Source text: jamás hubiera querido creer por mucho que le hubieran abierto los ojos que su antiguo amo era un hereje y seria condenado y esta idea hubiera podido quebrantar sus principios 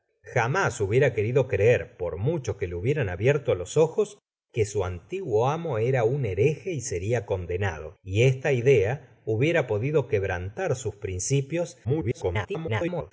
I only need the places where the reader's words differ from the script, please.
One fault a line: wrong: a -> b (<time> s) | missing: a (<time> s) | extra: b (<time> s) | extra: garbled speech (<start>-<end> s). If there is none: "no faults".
extra: garbled speech (11.8-13.1 s)